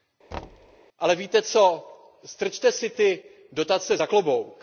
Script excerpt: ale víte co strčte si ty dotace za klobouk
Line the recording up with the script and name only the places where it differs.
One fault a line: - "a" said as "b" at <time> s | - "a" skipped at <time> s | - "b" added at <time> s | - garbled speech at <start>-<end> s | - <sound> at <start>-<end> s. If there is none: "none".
- thud at 0.3-0.8 s